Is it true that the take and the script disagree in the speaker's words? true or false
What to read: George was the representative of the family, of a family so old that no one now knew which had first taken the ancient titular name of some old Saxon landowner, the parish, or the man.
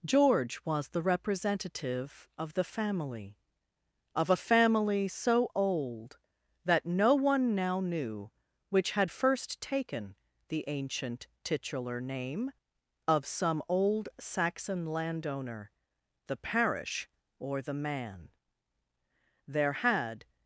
true